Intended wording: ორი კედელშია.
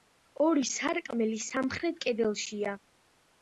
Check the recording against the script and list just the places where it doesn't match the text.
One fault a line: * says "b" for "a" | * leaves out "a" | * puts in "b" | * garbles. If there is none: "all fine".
* puts in "სარკმელი სამხრეთ"